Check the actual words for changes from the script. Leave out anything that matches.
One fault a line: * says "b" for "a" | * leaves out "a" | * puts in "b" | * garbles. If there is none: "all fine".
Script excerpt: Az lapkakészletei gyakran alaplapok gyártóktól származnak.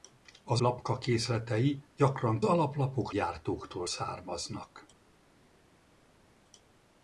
all fine